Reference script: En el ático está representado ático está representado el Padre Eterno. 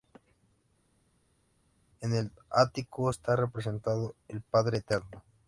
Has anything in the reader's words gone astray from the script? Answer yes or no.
yes